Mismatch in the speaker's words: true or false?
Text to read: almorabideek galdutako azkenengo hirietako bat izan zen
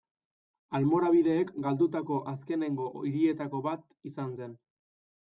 false